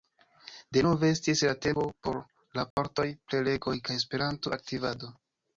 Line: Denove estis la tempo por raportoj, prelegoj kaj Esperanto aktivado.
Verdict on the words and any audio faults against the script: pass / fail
fail